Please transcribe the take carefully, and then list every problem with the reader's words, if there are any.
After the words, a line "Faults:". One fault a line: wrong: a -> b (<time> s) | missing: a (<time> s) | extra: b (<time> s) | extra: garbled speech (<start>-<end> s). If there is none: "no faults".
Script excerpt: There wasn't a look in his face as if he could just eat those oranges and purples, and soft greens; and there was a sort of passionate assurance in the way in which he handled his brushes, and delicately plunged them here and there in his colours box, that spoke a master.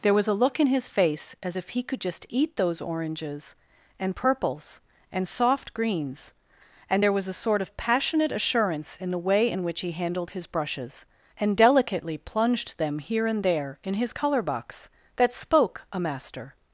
There was a look in his face as if he could just eat those oranges and purples, and soft greens; and there was a sort of passionate assurance in the way in which he handled his brushes, and delicately plunged them here and there in his colour box, that spoke a master.
Faults:
wrong: wasn't -> was (0.1 s)
wrong: colours -> colour (14.1 s)